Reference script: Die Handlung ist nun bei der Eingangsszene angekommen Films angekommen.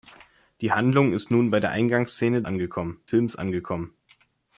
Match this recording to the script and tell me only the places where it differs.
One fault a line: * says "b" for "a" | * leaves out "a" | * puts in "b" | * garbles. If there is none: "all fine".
all fine